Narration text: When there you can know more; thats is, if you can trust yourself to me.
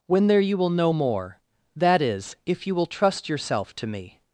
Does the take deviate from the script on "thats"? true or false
true